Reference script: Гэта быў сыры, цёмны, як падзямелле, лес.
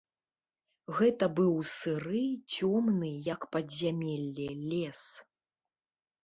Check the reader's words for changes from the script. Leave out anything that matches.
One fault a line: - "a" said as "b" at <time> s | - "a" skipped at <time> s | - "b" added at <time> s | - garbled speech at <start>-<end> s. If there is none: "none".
none